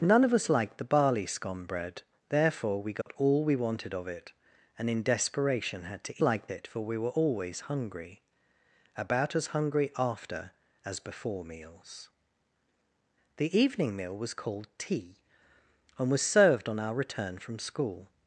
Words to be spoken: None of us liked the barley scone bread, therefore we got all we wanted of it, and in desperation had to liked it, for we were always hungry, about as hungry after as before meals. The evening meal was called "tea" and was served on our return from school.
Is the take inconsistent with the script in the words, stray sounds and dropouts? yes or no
yes